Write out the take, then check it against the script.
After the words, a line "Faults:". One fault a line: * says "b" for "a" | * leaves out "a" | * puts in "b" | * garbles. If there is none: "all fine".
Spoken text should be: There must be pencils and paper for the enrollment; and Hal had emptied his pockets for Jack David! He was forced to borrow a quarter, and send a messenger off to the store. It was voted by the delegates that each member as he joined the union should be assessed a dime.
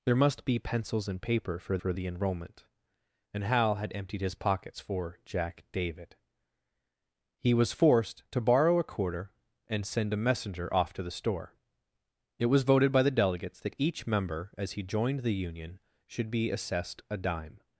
There must be pencils and paper for for the enrollment; and Hal had emptied his pockets for Jack David! He was forced to borrow a quarter, and send a messenger off to the store. It was voted by the delegates that each member as he joined the union should be assessed a dime.
Faults:
* puts in "for"